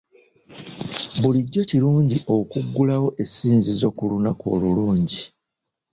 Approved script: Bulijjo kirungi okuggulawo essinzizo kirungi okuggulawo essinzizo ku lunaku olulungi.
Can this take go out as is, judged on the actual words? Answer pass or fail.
fail